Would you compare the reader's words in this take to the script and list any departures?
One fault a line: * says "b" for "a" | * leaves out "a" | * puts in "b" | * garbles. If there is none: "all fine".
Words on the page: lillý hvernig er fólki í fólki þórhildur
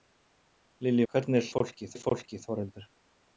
all fine